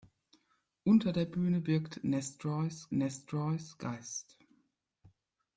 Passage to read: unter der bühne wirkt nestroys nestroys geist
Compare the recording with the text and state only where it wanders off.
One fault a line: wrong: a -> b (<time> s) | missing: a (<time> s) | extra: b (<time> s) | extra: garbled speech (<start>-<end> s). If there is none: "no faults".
no faults